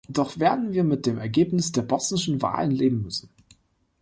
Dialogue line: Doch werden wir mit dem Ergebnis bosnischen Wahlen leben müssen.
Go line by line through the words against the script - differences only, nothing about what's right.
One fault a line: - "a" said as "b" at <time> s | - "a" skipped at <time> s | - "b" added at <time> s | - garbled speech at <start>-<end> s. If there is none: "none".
- "der" added at 1.7 s